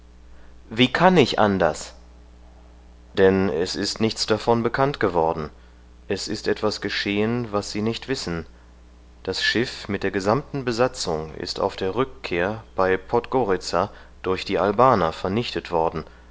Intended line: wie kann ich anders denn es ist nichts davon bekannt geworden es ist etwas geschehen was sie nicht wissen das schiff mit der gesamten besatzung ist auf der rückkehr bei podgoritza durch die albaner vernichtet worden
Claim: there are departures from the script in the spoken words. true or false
false